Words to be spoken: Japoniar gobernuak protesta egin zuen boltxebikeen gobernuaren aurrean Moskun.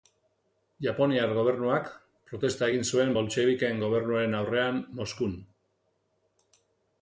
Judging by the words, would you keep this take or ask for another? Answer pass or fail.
pass